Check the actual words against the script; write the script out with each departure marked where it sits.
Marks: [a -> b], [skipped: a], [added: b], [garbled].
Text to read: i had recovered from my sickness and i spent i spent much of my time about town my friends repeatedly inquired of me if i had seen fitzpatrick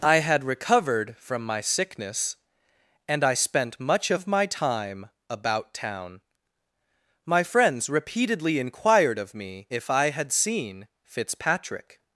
i had recovered from my sickness and i spent [skipped: i spent] much of my time about town my friends repeatedly inquired of me if i had seen fitzpatrick